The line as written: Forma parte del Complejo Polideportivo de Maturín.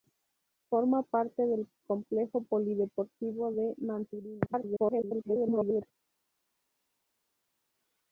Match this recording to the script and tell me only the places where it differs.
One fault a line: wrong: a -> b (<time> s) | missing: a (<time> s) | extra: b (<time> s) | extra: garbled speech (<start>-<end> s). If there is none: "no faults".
extra: garbled speech (4.5-5.8 s)